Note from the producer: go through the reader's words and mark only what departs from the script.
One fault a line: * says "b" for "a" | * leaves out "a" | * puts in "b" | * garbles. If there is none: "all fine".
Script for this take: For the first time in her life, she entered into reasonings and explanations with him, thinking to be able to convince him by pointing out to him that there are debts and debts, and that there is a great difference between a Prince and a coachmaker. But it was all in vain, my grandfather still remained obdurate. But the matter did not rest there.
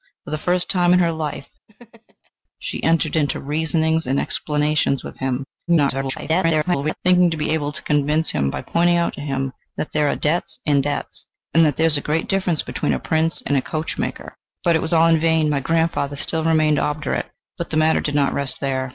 * garbles